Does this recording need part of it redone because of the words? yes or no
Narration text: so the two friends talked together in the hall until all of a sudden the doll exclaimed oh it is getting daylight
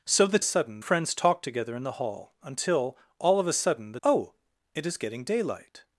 yes